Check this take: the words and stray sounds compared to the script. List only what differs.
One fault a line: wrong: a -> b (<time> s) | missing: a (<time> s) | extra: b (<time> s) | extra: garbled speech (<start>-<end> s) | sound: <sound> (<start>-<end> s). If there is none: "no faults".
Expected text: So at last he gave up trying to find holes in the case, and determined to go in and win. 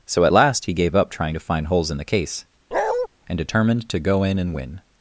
sound: bark (2.7-3.1 s)